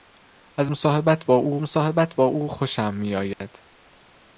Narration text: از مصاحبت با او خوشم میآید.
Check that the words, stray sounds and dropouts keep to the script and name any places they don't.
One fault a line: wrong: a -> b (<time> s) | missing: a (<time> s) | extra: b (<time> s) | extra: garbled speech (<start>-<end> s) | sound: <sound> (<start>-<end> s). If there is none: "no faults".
extra: مصاحبت با او (1.6 s)
sound: dropout (3.3-3.4 s)